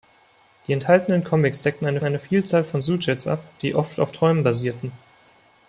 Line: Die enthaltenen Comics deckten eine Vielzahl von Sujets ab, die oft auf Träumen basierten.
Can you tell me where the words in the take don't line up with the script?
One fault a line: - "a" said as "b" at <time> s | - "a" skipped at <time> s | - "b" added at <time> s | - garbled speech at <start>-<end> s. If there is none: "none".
- "eine" added at 2.0 s